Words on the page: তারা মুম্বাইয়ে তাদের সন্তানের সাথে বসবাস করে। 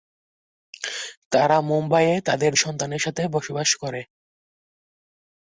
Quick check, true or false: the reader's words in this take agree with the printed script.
true